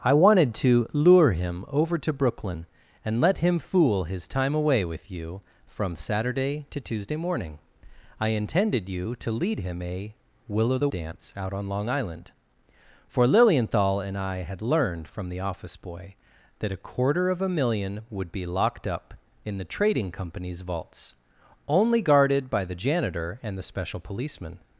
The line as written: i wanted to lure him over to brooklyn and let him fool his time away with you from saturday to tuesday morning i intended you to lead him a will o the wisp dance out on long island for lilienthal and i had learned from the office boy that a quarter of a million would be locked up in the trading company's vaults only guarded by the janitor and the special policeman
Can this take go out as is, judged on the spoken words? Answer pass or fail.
fail